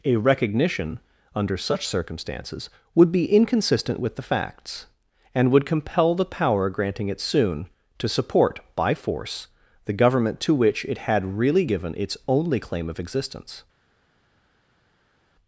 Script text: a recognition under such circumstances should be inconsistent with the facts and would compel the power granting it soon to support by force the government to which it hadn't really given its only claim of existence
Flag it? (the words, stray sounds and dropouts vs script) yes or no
yes